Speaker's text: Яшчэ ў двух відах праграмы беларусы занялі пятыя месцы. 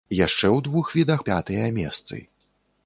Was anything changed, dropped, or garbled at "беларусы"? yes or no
yes